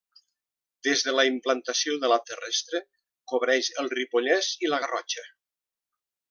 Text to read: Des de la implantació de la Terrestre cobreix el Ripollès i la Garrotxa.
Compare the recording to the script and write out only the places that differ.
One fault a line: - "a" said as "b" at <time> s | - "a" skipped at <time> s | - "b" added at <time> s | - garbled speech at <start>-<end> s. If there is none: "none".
none